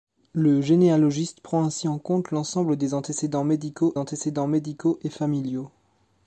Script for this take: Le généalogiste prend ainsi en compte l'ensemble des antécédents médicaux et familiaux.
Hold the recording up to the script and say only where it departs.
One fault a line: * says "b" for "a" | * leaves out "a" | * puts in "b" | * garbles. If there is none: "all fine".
* puts in "antécédents médicaux"